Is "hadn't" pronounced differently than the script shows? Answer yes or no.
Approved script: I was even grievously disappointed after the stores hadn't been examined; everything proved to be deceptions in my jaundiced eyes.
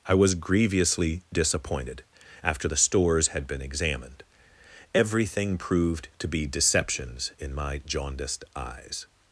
yes